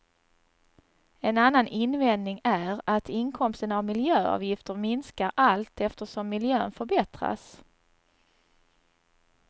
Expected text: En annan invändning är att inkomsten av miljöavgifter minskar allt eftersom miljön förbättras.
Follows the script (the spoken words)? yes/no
yes